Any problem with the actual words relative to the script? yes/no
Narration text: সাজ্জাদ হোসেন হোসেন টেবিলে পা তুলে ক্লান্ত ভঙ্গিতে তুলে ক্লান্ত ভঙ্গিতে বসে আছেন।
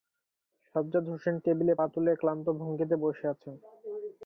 yes